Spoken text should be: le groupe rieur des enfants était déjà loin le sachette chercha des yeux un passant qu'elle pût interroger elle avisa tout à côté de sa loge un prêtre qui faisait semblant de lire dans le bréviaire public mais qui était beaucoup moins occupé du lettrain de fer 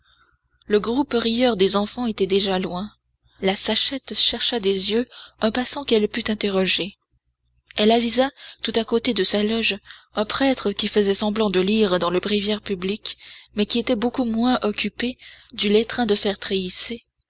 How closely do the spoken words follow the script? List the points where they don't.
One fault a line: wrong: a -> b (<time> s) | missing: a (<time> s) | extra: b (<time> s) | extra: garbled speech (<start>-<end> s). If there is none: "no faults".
wrong: le -> la (3.4 s)